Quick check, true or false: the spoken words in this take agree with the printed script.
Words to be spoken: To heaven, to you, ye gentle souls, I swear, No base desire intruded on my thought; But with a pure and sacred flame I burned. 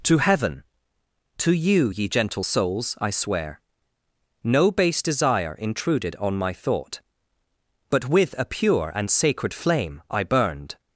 true